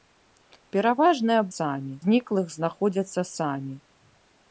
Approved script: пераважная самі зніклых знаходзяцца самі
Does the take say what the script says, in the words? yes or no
yes